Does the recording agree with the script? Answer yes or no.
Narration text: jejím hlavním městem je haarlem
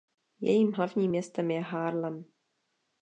yes